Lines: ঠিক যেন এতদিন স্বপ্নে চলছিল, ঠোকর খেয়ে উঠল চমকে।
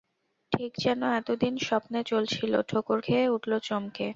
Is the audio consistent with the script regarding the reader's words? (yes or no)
yes